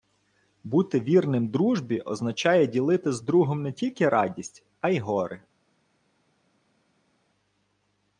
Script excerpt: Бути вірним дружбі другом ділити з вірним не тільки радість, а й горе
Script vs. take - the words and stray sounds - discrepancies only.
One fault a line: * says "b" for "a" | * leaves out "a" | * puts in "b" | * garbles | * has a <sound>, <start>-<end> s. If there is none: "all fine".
* says "означає" for "другом"
* says "другом" for "вірним"